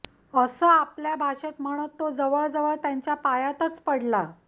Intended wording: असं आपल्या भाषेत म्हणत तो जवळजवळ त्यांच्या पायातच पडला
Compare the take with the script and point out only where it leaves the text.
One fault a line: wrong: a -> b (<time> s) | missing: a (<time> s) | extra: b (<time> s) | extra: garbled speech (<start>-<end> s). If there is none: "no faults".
no faults